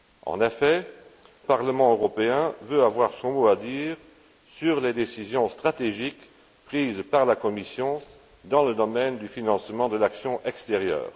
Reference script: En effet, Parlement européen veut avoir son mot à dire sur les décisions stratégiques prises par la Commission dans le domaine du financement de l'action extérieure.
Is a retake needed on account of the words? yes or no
no